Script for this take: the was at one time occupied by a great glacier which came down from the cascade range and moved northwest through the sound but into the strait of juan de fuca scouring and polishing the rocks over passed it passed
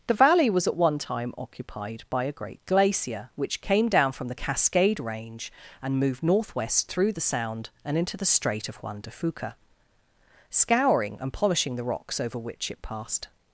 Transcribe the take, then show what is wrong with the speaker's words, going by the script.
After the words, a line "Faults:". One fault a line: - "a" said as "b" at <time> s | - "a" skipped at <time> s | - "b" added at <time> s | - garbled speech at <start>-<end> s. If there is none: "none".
the valley was at one time occupied by a great glacier which came down from the cascade range and moved northwest through the sound and into the strait of juan de fuca scouring and polishing the rocks over which it passed
Faults:
- "valley" added at 0.1 s
- "but" said as "and" at 7.8 s
- "passed" said as "which" at 12.4 s